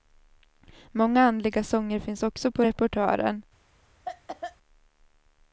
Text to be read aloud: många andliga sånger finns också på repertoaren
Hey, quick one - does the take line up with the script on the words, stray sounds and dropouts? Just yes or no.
no